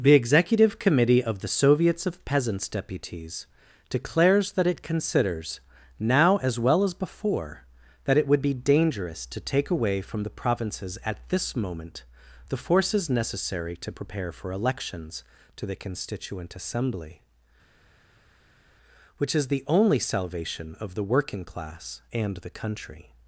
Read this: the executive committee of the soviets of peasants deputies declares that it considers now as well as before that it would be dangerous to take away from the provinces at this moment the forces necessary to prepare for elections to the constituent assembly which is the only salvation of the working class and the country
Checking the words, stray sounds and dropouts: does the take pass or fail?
pass